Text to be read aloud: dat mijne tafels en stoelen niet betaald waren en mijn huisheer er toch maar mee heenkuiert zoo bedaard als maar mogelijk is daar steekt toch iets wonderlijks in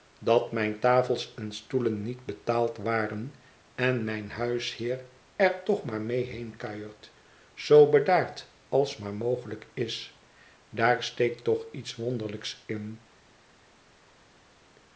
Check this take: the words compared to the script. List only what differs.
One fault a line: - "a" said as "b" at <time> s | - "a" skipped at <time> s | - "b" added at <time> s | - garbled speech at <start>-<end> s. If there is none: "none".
none